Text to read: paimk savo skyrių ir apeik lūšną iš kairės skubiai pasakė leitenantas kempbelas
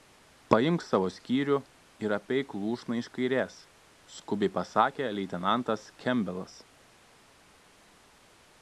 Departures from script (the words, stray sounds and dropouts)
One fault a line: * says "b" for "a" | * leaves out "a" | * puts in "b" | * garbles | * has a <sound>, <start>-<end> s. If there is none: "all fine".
all fine